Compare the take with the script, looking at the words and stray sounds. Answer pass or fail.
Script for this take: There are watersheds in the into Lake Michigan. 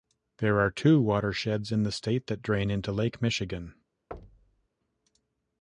fail